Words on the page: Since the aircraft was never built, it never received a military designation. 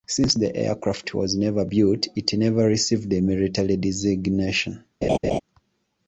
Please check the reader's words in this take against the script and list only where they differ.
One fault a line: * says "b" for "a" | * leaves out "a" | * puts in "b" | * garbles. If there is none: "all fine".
all fine